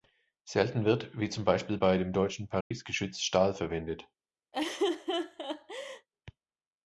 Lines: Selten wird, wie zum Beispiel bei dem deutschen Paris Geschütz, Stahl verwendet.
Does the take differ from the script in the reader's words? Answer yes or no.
no